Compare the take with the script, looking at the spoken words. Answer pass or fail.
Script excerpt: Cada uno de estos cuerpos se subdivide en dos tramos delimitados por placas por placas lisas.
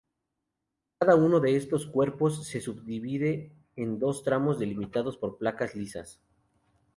fail